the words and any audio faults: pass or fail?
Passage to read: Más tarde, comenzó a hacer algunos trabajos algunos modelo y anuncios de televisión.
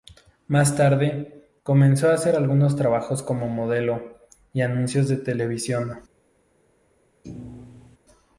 fail